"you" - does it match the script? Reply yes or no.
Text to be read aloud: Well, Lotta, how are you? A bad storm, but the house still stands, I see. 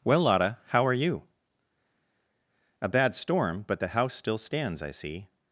yes